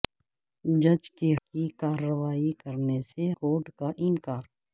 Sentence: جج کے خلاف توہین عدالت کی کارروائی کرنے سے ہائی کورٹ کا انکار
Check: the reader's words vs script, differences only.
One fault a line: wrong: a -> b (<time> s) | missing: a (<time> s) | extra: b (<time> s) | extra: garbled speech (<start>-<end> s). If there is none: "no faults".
missing: خلاف توہین عدالت (1.3 s)
missing: ہائی (3.3 s)